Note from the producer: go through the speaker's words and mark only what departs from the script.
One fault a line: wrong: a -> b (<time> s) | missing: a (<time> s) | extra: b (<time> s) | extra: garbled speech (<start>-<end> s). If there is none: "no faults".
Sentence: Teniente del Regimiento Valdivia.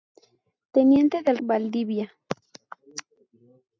missing: Regimiento (1.4 s)